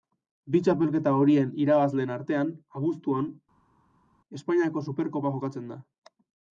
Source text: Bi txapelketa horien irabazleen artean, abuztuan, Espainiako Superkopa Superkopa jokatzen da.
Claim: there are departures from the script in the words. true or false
true